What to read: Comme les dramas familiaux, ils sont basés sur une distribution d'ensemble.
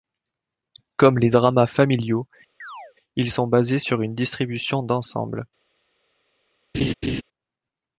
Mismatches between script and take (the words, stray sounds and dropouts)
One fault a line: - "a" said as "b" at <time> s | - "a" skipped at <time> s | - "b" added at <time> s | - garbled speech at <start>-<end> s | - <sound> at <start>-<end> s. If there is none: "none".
- chirp at 2.6-2.9 s
- laugh at 6.7-7.2 s